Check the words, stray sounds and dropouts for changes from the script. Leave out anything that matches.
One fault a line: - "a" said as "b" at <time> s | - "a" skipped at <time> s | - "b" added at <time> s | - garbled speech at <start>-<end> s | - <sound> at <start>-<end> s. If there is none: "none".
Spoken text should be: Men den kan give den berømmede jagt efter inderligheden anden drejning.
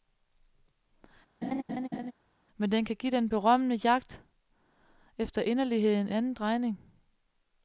- laugh at 1.4-2.1 s